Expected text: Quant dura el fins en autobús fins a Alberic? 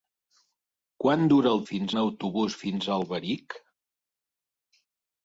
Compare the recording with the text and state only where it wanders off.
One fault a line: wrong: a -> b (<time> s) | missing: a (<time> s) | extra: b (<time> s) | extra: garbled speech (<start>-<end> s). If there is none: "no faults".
no faults